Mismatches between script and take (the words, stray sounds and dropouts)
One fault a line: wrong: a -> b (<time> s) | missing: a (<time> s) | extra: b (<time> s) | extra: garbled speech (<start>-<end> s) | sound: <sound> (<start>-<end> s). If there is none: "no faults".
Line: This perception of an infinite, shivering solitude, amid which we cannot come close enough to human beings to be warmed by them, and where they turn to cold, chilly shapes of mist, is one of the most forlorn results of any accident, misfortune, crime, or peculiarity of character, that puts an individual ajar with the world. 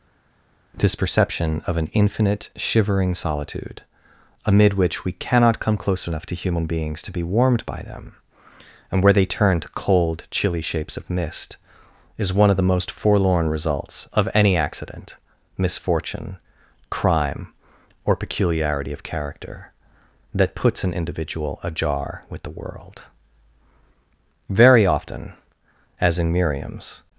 extra: Very often as in Miriam's (24.5 s)